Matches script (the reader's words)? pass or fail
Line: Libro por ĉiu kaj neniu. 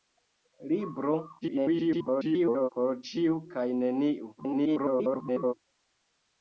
fail